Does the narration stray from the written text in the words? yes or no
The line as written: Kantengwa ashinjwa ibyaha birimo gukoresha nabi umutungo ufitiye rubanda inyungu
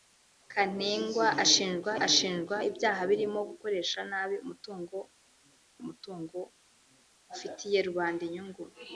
yes